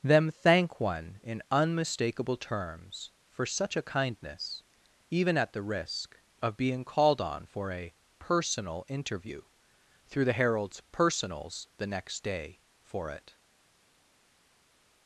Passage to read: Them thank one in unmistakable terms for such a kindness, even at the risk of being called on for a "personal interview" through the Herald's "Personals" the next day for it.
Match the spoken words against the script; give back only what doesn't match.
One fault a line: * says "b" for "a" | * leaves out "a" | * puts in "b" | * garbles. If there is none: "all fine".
all fine